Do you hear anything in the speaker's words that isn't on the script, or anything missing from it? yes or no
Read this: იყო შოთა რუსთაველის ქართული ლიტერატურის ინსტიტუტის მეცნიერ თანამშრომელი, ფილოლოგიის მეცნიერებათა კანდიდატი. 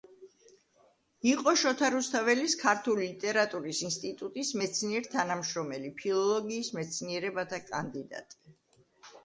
no